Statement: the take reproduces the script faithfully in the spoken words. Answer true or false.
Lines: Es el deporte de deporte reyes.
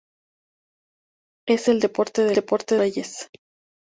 true